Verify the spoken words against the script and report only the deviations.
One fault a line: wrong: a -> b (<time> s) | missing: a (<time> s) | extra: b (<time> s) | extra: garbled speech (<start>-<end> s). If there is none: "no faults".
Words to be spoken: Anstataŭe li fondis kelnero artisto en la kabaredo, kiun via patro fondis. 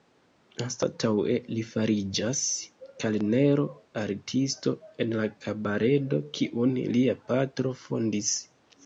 wrong: fondis -> fariĝas (1.7 s)
wrong: via -> lia (7.0 s)